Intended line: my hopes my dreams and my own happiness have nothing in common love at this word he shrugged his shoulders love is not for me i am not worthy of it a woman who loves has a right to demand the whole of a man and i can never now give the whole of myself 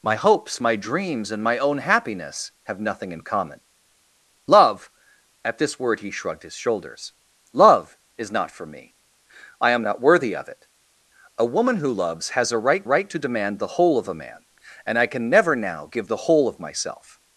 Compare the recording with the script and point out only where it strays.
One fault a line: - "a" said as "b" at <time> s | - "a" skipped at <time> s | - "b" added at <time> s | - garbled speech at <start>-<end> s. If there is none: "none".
- "right" added at 12.8 s